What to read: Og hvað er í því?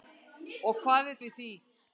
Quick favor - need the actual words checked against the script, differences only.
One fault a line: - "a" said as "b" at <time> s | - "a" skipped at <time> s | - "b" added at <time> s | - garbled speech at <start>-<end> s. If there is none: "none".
none